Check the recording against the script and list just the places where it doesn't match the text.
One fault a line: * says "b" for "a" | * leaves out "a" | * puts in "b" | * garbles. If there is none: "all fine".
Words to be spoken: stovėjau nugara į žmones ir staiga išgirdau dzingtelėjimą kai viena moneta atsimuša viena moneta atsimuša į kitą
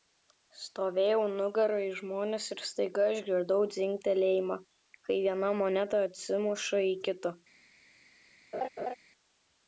* leaves out "viena moneta atsimuša"